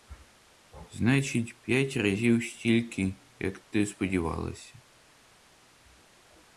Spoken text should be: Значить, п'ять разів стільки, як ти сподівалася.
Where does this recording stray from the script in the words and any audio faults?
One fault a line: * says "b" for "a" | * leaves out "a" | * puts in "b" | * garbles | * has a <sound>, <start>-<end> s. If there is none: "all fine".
all fine